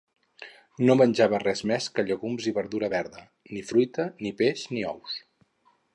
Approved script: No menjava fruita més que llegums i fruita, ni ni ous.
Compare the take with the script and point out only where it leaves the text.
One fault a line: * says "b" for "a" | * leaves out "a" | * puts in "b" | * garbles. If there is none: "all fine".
* says "res" for "fruita"
* puts in "verdura verda ni"
* puts in "peix"